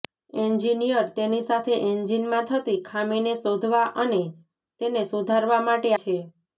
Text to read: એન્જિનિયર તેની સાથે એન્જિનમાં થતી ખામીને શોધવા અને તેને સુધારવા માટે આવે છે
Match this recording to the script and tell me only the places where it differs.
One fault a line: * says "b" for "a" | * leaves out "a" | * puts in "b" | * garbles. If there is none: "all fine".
* leaves out "આવે"